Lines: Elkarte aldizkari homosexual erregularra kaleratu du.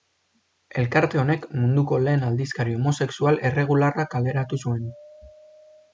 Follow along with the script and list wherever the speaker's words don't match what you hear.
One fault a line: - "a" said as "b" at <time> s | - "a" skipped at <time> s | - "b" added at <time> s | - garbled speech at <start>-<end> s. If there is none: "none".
- "honek munduko lehen" added at 1.2 s
- "du" said as "zuen" at 4.6 s